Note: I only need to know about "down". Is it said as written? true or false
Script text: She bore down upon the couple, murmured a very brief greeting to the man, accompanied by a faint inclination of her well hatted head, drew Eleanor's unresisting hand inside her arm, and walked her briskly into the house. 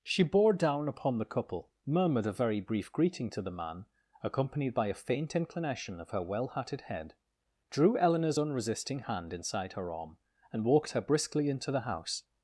true